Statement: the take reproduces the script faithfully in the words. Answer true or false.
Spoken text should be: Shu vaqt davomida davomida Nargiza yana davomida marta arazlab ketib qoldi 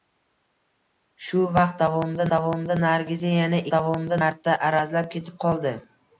true